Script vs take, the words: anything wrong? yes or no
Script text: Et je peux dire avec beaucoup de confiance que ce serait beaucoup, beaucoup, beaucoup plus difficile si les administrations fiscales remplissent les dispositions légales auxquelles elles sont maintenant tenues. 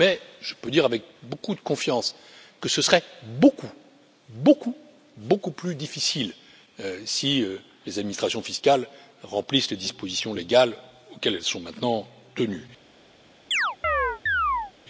yes